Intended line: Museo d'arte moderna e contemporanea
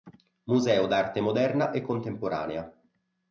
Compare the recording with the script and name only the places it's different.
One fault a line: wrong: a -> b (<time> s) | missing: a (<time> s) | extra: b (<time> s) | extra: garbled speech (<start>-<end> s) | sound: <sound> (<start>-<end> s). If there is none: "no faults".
no faults